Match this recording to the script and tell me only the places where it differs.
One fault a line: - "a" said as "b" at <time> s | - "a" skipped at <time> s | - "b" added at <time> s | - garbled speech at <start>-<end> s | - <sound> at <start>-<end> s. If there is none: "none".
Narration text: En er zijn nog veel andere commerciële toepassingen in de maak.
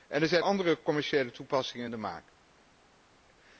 - "nog veel" skipped at 0.4 s